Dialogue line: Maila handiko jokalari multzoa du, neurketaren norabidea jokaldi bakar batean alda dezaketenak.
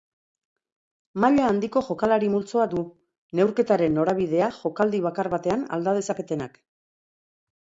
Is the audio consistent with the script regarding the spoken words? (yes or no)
yes